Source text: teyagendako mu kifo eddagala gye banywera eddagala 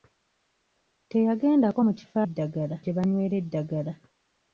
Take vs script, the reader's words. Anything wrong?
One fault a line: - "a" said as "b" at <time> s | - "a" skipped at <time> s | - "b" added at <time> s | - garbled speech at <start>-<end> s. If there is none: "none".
none